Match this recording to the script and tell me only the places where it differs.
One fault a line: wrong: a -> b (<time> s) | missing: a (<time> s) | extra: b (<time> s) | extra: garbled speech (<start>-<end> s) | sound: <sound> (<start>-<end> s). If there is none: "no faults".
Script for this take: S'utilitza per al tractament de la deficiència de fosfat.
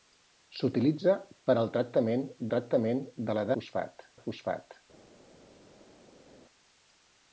extra: tractament (2.5 s)
wrong: deficiència -> fosfat (3.6 s)